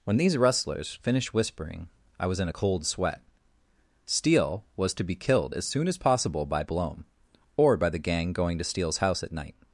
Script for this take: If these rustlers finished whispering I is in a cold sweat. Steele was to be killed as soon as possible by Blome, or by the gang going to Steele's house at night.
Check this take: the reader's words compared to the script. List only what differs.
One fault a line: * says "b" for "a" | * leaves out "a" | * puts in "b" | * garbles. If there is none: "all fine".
* says "When" for "If"
* says "was" for "is"